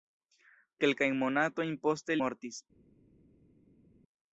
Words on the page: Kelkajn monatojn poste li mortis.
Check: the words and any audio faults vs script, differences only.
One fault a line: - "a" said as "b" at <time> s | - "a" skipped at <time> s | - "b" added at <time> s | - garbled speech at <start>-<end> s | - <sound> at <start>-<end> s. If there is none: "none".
- "li" skipped at 2.2 s